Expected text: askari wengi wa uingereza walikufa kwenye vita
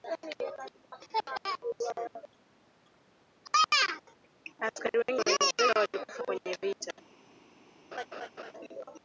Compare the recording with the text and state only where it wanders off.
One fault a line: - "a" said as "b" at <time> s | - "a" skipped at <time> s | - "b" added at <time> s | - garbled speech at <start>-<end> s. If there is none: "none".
none